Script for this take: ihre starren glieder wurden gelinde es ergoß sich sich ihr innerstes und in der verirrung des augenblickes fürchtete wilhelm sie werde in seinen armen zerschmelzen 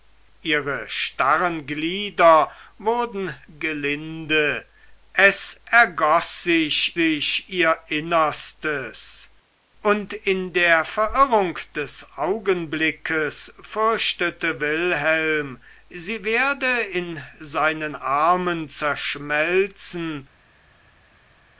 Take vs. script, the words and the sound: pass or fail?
pass